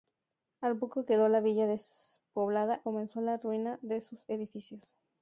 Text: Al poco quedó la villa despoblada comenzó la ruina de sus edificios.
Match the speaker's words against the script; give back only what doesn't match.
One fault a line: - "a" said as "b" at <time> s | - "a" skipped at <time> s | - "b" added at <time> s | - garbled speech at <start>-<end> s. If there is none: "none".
none